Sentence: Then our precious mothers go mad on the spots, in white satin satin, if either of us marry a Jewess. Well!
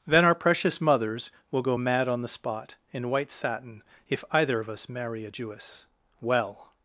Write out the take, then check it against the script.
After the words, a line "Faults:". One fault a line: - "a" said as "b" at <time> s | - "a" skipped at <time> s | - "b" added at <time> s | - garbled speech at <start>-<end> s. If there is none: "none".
Then our precious mothers will go mad on the spot, in white satin, if either of us marry a Jewess. Well!
Faults:
- "will" added at 1.5 s
- "spots" said as "spot" at 2.3 s
- "satin" skipped at 3.8 s